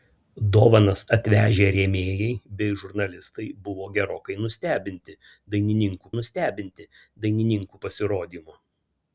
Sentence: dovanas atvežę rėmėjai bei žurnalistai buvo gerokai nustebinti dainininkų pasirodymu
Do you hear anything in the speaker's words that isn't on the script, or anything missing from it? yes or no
yes